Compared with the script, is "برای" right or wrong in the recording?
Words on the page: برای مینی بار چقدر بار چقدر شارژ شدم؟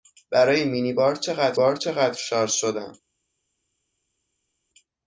right